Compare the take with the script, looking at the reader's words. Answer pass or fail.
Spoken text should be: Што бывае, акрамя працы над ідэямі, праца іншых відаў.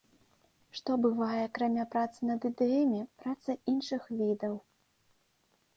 pass